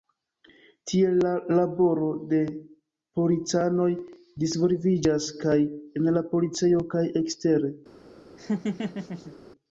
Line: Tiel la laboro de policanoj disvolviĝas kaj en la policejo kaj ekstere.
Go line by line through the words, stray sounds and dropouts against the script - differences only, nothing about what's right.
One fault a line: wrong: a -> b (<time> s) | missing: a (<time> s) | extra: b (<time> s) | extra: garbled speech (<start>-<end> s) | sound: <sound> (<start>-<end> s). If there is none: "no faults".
sound: laugh (8.4-9.3 s)